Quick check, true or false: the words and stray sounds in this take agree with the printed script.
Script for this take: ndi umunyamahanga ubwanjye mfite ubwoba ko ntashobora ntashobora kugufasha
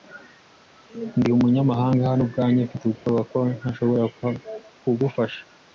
false